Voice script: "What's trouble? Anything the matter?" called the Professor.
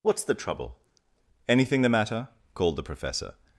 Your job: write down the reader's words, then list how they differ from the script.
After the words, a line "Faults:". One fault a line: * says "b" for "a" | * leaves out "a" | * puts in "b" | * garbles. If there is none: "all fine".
"What's the trouble? Anything the matter?" called the Professor.
Faults:
* puts in "the"